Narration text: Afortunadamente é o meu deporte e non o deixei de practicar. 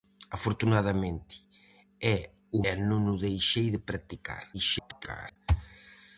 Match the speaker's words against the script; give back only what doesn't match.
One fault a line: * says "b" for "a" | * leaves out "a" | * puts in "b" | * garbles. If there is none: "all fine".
* leaves out "meu deporte"
* garbles